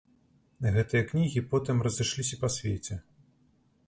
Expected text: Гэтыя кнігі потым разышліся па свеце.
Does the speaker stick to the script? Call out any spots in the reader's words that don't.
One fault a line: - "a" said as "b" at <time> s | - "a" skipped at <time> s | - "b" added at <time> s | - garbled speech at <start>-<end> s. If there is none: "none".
none